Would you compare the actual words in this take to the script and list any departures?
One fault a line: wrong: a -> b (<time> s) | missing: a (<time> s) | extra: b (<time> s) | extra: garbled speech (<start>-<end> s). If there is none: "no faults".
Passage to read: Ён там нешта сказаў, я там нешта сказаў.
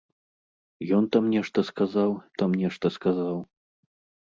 missing: я (2.1 s)